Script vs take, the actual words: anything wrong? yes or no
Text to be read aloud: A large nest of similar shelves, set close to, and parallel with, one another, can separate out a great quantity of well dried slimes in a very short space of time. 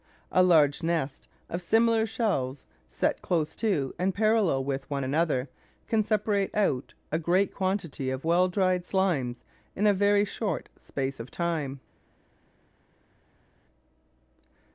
no